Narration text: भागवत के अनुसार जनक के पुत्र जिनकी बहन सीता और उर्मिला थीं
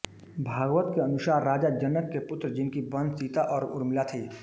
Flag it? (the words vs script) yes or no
yes